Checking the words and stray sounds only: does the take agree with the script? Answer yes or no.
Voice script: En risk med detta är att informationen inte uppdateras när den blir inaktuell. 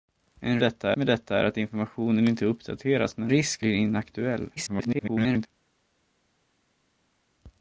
no